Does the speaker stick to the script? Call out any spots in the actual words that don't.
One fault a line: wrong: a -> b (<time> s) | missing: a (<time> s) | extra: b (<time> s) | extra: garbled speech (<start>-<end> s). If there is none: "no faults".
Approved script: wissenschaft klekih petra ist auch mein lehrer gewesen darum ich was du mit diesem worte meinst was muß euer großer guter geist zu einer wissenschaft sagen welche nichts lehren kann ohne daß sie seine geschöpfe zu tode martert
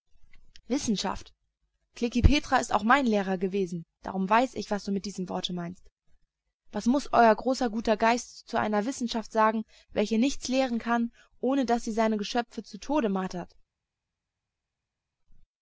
extra: weiß (4.3 s)